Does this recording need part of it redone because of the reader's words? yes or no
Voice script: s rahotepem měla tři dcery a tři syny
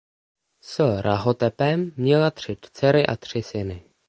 no